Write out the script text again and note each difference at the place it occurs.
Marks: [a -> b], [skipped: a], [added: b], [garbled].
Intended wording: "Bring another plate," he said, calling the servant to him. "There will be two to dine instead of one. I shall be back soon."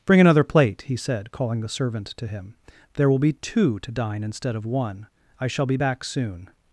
"Bring another plate," he said, calling the servant to him. "There will be two to dine instead of one. I shall be back soon."